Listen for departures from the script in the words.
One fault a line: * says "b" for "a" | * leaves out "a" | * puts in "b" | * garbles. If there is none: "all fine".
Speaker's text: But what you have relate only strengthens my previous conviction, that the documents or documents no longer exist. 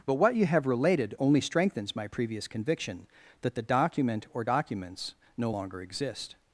* says "related" for "relate"
* says "document" for "documents"